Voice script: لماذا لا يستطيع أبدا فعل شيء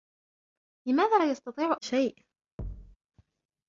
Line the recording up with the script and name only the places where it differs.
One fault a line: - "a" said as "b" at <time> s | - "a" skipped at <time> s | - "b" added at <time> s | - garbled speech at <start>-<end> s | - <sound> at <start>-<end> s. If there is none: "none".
- "أبدا فعل" skipped at 1.8 s
- thud at 2.6-3.0 s